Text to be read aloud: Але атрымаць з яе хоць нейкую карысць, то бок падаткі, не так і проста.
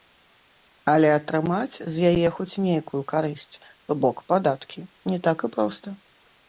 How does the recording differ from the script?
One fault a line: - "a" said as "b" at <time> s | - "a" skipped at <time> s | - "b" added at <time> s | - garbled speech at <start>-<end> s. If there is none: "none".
none